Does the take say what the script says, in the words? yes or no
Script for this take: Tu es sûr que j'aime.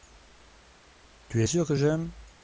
yes